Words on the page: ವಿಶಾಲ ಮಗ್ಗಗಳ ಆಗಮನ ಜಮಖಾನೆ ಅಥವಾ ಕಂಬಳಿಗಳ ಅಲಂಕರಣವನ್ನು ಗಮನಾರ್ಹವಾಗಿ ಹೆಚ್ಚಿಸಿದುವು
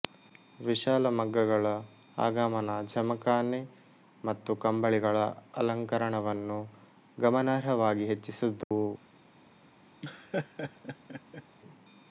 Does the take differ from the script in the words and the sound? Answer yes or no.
yes